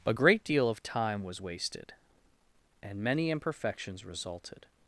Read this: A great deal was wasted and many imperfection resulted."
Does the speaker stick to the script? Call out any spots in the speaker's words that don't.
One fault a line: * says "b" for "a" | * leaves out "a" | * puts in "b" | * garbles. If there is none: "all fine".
* puts in "of time"
* says "imperfections" for "imperfection"